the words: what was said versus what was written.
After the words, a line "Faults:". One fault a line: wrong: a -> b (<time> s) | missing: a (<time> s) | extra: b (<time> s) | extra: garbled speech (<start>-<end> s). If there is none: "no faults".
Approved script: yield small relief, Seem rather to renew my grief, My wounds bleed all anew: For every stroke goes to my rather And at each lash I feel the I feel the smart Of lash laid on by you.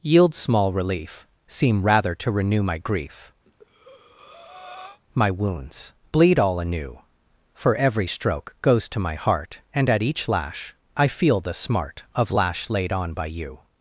yield small relief, Seem rather to renew my grief, My wounds bleed all anew: For every stroke goes to my heart And at each lash I feel the smart Of lash laid on by you.
Faults:
wrong: rather -> heart (9.1 s)
missing: I feel the (11.5 s)